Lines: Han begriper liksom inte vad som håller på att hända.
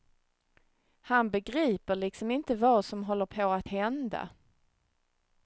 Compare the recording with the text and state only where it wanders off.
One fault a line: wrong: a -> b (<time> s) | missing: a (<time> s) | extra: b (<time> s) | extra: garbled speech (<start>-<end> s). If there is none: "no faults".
no faults